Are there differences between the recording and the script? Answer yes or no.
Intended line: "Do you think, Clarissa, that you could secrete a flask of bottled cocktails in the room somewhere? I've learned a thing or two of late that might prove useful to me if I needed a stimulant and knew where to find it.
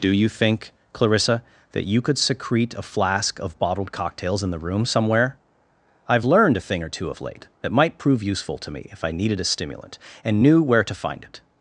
no